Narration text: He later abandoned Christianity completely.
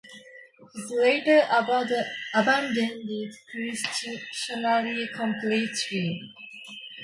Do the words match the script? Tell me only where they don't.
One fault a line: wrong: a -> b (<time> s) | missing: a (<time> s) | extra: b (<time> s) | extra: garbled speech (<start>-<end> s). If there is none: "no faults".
no faults